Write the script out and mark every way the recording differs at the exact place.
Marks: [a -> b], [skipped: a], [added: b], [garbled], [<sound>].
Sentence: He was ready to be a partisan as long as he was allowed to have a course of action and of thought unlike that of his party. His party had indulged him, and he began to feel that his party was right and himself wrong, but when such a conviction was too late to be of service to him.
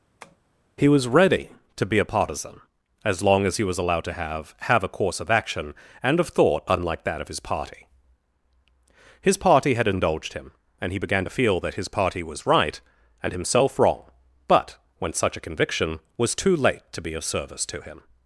[tap] He was ready to be a partisan as long as he was allowed to have [added: have] a course of action and of thought unlike that of his party. His party had indulged him, and he began to feel that his party was right and himself wrong, but when such a conviction was too late to be of service to him.